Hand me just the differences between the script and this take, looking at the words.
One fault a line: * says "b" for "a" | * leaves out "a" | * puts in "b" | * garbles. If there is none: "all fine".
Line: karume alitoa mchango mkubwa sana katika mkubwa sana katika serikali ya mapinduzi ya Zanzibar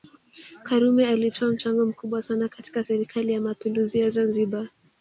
* leaves out "mkubwa sana katika"